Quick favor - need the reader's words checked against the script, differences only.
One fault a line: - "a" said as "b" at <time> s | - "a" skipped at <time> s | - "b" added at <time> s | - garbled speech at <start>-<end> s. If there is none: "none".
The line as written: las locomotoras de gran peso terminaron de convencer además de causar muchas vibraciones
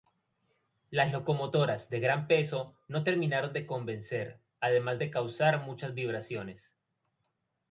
- "no" added at 2.9 s